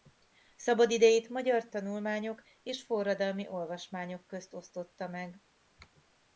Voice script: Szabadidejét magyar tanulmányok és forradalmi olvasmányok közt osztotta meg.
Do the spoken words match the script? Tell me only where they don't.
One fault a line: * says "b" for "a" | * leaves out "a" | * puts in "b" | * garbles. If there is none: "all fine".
all fine